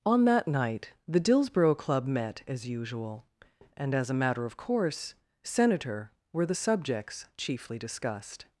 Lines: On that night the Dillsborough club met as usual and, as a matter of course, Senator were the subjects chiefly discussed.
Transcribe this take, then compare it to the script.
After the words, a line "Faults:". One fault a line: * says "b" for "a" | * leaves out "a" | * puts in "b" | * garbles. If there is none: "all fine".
On that night the Dillsborough club met as usual and, as a matter of course, Senator were the subjects chiefly discussed.
Faults:
all fine